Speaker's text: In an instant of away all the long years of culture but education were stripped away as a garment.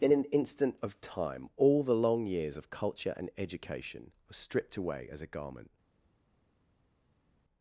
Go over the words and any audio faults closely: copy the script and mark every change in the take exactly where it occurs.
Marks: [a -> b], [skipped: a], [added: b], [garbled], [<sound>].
In an instant of [away -> time] all the long years of culture [but -> and] education were stripped away as a garment.